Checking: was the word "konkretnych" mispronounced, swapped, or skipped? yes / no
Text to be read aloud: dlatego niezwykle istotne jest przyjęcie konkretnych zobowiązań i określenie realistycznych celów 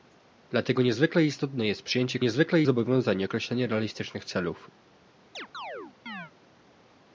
yes